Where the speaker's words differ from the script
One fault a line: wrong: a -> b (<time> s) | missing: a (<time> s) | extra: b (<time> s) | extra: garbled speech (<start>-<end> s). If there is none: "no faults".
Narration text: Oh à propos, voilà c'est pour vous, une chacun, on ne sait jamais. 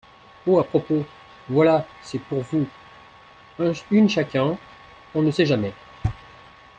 no faults